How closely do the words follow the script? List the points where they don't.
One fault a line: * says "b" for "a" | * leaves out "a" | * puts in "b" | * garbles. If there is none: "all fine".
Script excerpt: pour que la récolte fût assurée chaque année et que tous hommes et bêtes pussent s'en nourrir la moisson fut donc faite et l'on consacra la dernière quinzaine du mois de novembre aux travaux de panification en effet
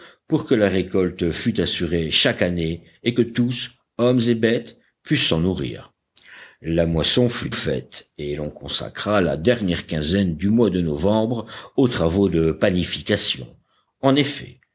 * leaves out "donc"